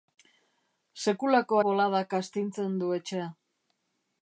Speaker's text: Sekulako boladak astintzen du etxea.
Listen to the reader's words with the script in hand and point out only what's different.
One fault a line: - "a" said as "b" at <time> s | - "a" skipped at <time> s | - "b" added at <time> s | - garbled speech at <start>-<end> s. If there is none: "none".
none